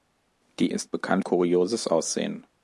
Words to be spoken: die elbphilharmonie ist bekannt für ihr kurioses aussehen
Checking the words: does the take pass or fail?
fail